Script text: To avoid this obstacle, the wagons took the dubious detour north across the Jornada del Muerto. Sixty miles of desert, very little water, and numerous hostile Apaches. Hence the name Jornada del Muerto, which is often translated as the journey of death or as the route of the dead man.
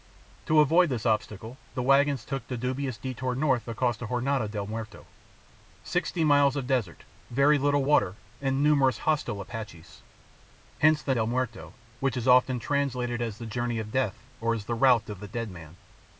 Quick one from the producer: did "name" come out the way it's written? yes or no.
no